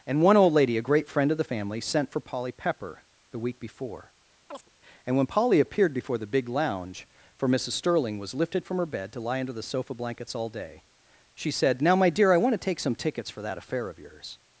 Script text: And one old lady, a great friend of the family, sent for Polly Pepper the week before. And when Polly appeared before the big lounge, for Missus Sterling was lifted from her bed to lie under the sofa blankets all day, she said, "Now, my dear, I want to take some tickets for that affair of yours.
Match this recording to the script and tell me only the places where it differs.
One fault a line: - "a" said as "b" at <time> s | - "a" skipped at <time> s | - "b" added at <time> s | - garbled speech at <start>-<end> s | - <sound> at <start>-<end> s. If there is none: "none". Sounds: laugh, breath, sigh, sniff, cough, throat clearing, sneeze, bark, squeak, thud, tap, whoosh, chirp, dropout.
- chirp at 4.5-4.7 s